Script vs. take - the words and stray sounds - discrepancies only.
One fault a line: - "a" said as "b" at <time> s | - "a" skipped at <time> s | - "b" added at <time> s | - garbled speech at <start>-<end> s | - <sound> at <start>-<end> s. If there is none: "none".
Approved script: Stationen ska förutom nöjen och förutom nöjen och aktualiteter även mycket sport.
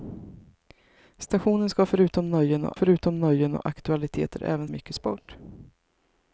none